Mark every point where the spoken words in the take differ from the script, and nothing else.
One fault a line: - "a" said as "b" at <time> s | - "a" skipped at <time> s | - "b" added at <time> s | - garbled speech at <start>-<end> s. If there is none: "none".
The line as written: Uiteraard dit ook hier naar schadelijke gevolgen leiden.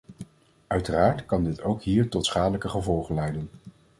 - "kan" added at 1.2 s
- "naar" said as "tot" at 2.1 s